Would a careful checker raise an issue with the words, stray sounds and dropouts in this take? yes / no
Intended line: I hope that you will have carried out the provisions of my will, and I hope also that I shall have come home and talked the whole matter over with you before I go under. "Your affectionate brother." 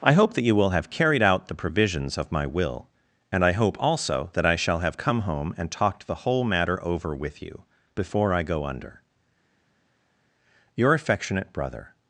no